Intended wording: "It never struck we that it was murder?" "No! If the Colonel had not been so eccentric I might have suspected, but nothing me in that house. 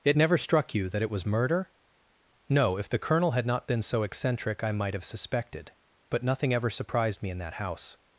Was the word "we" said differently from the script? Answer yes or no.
yes